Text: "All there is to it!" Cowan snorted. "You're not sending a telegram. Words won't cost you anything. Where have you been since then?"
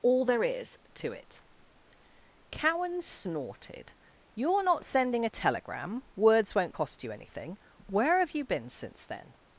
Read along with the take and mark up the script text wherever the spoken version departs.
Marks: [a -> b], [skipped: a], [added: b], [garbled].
"All there is to it!" Cowan snorted. "You're not sending a telegram. Words won't cost you anything. Where have you been since then?"